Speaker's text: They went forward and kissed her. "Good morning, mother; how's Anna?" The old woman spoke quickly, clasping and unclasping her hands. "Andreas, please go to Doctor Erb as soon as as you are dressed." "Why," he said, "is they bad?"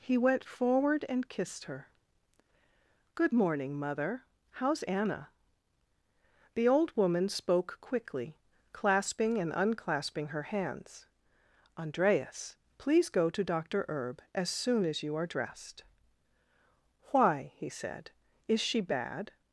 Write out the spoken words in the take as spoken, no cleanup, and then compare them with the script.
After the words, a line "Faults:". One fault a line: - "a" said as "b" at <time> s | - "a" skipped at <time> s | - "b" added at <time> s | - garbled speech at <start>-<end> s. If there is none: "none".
He went forward and kissed her. "Good morning, mother; how's Anna?" The old woman spoke quickly, clasping and unclasping her hands. "Andreas, please go to Doctor Erb as soon as you are dressed." "Why," he said, "is she bad?"
Faults:
- "They" said as "He" at 0.0 s
- "as" skipped at 15.0 s
- "they" said as "she" at 18.6 s